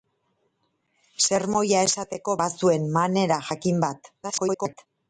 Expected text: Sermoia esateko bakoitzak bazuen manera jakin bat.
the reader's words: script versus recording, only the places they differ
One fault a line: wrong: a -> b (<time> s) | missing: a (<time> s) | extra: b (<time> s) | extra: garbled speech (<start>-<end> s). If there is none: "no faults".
missing: bakoitzak (2.4 s)
extra: garbled speech (4.2-4.9 s)